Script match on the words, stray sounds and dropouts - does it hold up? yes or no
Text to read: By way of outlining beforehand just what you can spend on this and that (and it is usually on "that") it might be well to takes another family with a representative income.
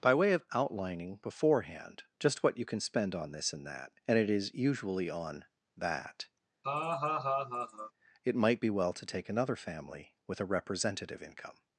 no